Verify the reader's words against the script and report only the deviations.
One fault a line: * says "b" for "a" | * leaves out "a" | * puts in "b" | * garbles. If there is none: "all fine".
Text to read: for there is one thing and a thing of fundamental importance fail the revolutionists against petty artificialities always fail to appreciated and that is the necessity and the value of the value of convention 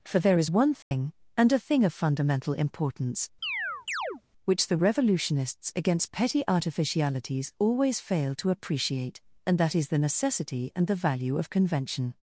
* says "which" for "fail"
* says "appreciate" for "appreciated"
* leaves out "the value of"